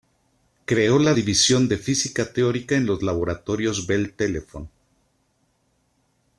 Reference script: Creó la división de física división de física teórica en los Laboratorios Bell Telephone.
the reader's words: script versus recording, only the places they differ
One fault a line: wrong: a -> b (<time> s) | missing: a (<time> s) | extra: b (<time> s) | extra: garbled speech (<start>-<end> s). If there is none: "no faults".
missing: división de física (2.3 s)